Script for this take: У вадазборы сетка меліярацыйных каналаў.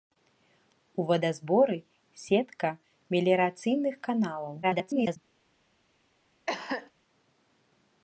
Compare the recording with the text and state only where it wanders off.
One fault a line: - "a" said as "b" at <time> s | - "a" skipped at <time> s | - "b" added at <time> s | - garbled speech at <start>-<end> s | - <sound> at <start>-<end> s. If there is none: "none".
- garbled speech at 4.6-5.2 s
- cough at 6.5-6.9 s